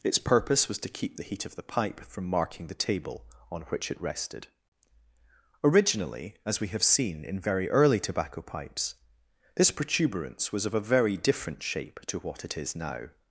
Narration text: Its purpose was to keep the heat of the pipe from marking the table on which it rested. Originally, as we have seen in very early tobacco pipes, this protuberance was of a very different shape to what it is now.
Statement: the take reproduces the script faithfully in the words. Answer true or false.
true